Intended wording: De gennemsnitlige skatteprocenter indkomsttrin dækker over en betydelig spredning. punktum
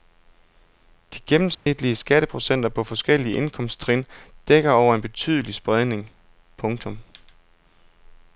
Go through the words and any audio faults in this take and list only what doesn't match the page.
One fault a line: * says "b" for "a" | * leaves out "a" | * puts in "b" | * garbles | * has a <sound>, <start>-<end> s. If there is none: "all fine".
* has a dropout, 1.5-1.7 s
* puts in "på forskellige"